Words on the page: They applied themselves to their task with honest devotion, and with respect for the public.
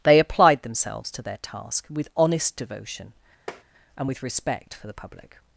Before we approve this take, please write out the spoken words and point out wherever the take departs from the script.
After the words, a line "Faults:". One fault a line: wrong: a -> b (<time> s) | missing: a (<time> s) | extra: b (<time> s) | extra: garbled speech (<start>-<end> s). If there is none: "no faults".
They applied themselves to their task with honest devotion, and with respect for the public.
Faults:
no faults